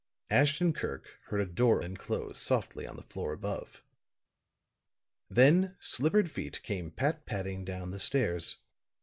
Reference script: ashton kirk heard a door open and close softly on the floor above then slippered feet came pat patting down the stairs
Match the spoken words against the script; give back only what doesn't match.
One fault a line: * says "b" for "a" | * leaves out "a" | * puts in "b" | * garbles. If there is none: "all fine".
* leaves out "open"